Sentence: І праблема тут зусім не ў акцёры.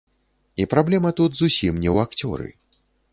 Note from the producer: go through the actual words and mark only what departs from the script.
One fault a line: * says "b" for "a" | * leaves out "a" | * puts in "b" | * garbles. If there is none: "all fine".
all fine